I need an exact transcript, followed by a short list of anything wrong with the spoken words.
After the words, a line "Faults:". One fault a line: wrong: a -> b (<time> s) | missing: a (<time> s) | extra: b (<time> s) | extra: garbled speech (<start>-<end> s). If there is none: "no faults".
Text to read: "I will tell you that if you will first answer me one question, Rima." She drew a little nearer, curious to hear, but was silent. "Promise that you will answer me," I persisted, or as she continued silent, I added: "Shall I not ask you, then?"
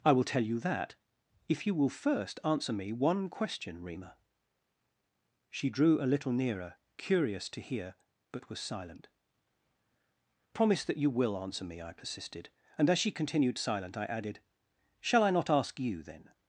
"I will tell you that if you will first answer me one question, Rima." She drew a little nearer, curious to hear, but was silent. "Promise that you will answer me," I persisted, and as she continued silent, I added: "Shall I not ask you, then?"
Faults:
wrong: or -> and (12.8 s)